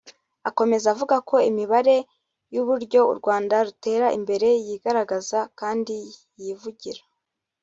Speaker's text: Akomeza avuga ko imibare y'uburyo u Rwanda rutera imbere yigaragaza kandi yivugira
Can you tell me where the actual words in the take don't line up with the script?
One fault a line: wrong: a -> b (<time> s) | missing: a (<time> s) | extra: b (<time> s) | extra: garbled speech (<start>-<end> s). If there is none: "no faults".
no faults